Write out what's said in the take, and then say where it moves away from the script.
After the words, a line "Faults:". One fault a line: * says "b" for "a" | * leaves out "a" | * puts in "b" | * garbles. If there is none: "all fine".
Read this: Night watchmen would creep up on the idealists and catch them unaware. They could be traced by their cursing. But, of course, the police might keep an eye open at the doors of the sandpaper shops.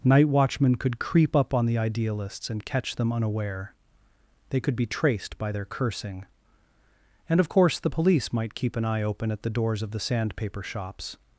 Night watchmen could creep up on the idealists and catch them unaware. They could be traced by their cursing. And, of course, the police might keep an eye open at the doors of the sandpaper shops.
Faults:
* says "could" for "would"
* says "And" for "But"